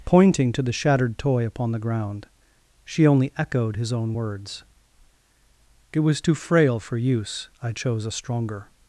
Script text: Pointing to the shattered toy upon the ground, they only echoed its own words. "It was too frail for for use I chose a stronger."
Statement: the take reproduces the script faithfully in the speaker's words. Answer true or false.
false